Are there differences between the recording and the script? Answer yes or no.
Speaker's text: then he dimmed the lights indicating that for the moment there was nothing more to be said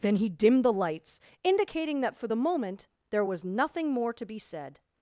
no